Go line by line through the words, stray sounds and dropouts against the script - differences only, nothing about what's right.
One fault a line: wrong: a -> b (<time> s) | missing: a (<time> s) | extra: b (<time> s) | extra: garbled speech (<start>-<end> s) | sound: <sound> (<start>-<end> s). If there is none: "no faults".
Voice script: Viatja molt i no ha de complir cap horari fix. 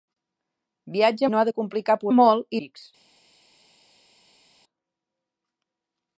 missing: molt (1.3 s)
wrong: horari -> molt (2.1 s)